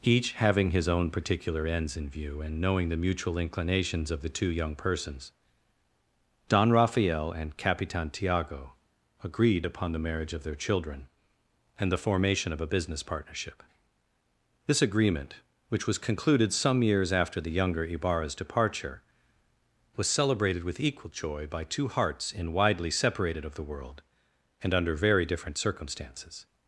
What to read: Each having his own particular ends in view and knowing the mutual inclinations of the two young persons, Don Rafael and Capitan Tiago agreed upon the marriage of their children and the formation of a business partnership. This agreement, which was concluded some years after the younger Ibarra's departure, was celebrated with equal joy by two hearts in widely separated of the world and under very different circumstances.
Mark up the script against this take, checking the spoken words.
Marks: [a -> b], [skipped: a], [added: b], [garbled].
Each having his own particular ends in view and knowing the mutual inclinations of the two young persons, Don Rafael and Capitan Tiago agreed upon the marriage of their children and the formation of a business partnership. This agreement, which was concluded some years after the younger Ibarra's departure, was celebrated with equal joy by two hearts in widely separated of the world and under very different circumstances.